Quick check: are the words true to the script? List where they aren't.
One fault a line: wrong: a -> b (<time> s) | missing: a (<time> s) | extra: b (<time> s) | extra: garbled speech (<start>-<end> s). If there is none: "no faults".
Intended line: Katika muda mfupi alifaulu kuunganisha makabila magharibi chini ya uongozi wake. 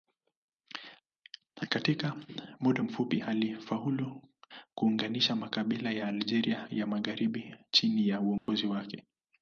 extra: ya Algeria ya (5.9 s)